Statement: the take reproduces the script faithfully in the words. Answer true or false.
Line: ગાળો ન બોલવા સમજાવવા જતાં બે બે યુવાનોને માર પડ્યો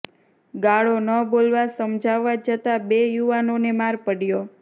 false